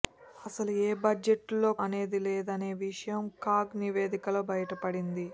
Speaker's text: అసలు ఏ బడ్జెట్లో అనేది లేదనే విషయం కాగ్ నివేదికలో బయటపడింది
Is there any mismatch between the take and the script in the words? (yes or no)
no